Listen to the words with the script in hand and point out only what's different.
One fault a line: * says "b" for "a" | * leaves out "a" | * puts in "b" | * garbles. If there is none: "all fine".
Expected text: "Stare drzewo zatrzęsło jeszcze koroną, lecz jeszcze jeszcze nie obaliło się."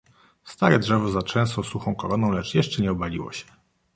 * says "suchą" for "jeszcze"
* leaves out "jeszcze"